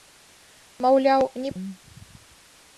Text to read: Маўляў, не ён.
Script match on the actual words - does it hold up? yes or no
yes